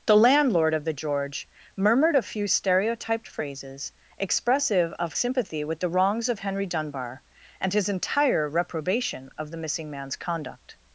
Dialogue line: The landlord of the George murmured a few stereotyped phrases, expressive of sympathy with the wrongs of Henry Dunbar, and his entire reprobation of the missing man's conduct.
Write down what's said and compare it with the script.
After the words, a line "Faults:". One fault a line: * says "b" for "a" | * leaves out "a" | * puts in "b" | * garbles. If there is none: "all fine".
The landlord of the George murmured a few stereotyped phrases, expressive of sympathy with the wrongs of Henry Dunbar, and his entire reprobation of the missing man's conduct.
Faults:
all fine